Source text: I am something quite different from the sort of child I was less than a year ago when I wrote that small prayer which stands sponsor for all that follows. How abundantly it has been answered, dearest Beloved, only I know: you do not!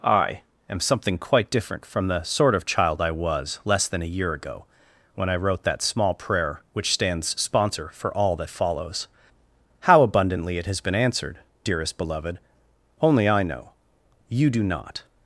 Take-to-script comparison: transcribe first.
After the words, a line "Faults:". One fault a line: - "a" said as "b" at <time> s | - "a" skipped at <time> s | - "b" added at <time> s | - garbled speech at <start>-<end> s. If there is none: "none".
I am something quite different from the sort of child I was less than a year ago when I wrote that small prayer which stands sponsor for all that follows. How abundantly it has been answered, dearest Beloved, only I know: you do not!
Faults:
none